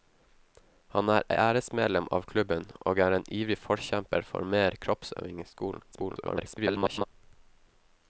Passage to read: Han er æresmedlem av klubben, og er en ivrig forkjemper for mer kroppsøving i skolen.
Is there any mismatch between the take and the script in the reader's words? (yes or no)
yes